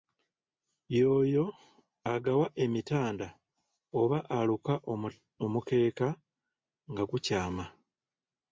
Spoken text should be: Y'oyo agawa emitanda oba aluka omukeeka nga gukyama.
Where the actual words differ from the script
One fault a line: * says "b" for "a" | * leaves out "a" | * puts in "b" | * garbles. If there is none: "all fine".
all fine